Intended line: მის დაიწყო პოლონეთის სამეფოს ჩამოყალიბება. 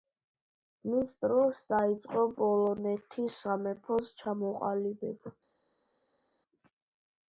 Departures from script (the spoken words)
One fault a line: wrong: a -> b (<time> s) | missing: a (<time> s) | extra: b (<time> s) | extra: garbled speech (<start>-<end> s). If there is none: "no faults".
extra: დროს (1.2 s)